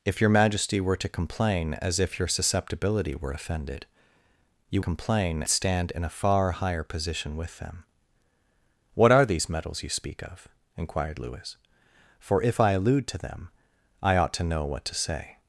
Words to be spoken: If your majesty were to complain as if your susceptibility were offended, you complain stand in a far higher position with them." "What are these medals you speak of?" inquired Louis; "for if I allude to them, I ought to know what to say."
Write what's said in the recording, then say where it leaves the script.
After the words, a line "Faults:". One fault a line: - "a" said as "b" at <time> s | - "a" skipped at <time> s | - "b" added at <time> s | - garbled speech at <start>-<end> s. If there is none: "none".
If your majesty were to complain as if your susceptibility were offended, you complain stand in a far higher position with them." "What are these medals you speak of?" inquired Louis; "for if I allude to them, I ought to know what to say."
Faults:
none